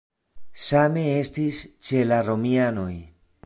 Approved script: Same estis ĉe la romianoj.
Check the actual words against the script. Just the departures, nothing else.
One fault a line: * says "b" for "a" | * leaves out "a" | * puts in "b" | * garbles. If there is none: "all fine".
all fine